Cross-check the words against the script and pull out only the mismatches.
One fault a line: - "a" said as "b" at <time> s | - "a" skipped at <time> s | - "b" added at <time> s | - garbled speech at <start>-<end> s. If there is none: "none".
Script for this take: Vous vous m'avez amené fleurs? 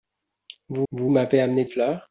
none